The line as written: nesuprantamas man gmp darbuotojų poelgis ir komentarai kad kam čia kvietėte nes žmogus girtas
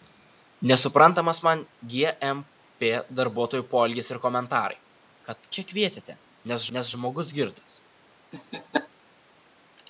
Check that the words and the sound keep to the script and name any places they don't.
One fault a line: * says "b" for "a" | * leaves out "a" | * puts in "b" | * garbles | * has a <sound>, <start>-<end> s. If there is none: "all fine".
* leaves out "kam"
* puts in "nes"
* has a laugh, 8.3-8.9 s